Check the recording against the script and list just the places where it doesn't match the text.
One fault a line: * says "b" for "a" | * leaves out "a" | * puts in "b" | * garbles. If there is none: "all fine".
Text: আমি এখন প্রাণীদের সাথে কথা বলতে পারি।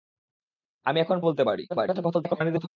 * leaves out "প্রাণীদের সাথে কথা"
* garbles